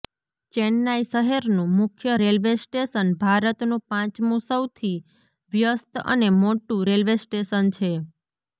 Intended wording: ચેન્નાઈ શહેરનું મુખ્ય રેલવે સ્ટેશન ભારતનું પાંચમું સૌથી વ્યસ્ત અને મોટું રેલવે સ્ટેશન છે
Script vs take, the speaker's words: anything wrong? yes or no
no